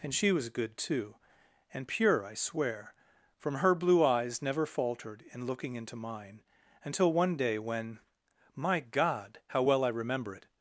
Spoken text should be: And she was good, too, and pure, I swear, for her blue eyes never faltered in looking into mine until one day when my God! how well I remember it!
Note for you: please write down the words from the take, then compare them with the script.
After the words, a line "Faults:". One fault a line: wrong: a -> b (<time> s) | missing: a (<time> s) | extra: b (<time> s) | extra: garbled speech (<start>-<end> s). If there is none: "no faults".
And she was good, too, and pure, I swear, from her blue eyes never faltered in looking into mine until one day when my God! how well I remember it!
Faults:
wrong: for -> from (3.4 s)